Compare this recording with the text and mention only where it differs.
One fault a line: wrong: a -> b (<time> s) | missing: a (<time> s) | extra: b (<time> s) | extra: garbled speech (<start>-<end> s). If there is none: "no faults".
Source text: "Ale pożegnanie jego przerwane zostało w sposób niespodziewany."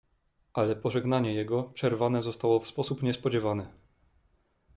no faults